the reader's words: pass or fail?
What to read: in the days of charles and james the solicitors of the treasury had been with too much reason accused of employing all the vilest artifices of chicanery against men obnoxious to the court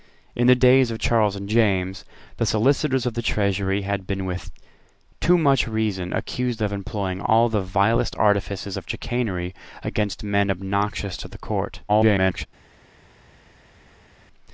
fail